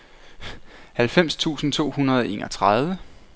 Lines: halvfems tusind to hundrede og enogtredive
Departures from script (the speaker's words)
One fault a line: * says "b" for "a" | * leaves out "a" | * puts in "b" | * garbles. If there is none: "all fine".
all fine